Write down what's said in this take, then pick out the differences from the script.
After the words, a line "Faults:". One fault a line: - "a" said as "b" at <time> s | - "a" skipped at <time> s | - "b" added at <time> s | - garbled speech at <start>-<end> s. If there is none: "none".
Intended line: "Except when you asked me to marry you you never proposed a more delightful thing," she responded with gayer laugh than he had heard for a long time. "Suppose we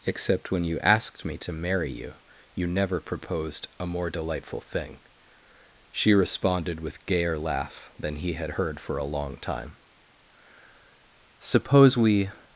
"Except when you asked me to marry you you never proposed a more delightful thing," she responded with gayer laugh than he had heard for a long time. "Suppose we
Faults:
none